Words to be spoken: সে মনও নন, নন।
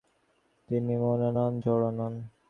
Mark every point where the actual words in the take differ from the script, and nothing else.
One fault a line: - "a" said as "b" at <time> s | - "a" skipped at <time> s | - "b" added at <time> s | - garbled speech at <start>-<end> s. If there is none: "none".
- "সে" said as "তিনি" at 0.7 s
- "জড়ও" added at 1.6 s